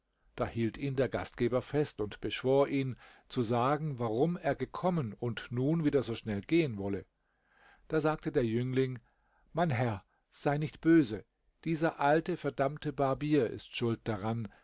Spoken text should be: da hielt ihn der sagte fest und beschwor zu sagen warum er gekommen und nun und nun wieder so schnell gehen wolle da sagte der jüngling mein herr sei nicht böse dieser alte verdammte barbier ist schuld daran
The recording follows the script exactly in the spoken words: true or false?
false